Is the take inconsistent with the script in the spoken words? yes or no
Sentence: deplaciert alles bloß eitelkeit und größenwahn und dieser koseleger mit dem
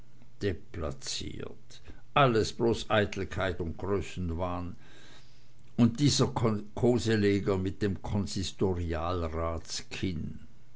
no